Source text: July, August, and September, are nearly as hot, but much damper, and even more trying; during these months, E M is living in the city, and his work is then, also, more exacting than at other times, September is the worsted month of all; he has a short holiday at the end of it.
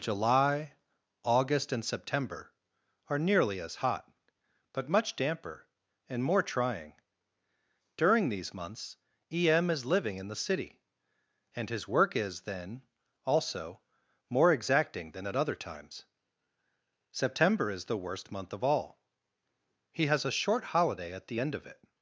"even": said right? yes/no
no